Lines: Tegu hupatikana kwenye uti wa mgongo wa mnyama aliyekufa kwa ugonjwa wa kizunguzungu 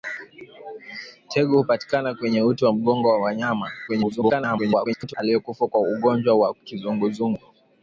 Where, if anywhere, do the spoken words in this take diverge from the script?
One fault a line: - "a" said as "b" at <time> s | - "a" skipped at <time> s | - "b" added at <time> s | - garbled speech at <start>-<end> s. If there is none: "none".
- garbled speech at 3.9-5.1 s